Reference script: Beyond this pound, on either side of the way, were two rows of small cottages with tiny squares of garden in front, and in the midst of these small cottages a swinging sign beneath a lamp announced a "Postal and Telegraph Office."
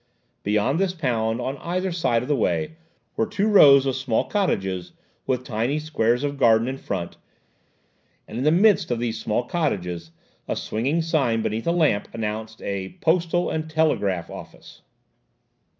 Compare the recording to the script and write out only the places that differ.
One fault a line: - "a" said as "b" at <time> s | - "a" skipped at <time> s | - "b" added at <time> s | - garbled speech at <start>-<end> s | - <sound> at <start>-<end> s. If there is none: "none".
none